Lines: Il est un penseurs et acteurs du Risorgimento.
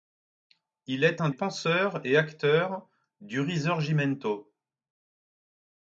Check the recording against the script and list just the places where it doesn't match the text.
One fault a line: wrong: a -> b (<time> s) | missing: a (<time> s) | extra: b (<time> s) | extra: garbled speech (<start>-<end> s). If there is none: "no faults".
no faults